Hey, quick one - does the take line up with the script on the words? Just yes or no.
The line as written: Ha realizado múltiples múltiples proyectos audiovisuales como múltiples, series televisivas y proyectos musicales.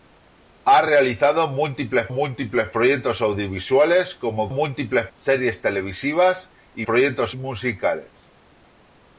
yes